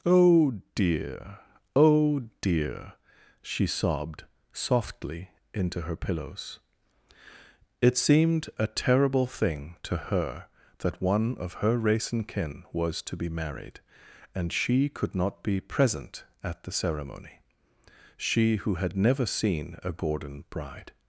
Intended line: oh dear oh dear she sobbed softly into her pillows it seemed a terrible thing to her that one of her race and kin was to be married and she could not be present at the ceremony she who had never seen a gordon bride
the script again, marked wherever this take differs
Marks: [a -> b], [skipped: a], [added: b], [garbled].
oh dear oh dear she sobbed softly into her pillows it seemed a terrible thing to her that one of her race and kin was to be married and she could not be present at the ceremony she who had never seen a gordon bride